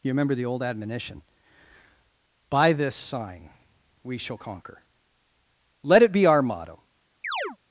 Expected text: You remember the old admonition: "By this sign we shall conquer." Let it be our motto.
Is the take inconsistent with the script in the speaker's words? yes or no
no